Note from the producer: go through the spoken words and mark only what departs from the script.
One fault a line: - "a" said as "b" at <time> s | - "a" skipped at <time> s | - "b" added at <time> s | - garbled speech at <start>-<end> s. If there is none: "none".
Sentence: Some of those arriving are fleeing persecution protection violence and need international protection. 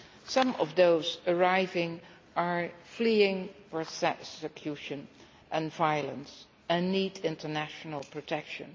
- "protection" said as "and" at 5.5 s